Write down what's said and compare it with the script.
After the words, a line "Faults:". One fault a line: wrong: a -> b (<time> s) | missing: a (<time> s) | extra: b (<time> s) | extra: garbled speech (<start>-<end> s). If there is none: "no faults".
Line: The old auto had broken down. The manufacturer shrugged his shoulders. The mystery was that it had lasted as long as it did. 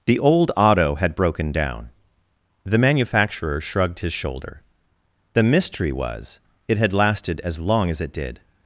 The old auto had broken down. The manufacturer shrugged his shoulder. The mystery was it had lasted as long as it did.
Faults:
wrong: shoulders -> shoulder (4.1 s)
missing: that (6.4 s)